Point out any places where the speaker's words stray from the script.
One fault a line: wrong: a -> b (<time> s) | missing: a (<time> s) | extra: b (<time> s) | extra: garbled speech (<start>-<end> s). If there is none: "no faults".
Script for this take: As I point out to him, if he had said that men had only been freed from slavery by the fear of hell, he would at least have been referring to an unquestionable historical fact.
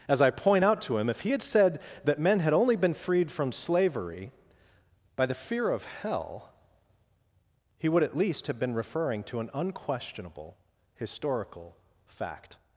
no faults